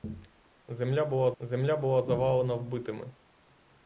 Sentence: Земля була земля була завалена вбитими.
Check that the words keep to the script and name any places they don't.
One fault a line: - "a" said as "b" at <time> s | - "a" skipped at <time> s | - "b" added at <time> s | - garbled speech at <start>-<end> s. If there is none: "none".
none